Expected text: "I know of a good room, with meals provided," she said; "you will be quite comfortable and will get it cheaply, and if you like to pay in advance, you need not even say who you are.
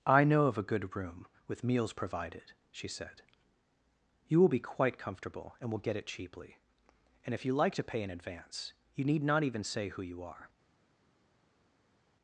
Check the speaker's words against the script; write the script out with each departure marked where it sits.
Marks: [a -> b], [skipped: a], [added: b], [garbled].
"I know of a good room, with meals provided," she said; "you will be quite comfortable and will get it cheaply, and if you like to pay in advance, you need not even say who you are.